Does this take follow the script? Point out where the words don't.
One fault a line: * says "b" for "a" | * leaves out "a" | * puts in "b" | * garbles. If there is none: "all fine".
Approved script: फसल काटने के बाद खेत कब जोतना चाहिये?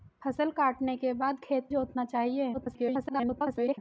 * leaves out "कब"
* garbles